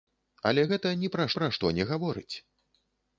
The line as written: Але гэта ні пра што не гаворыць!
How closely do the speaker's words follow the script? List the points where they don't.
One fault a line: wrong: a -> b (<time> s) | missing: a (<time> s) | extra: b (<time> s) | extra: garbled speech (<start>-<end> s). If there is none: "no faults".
extra: пра (1.4 s)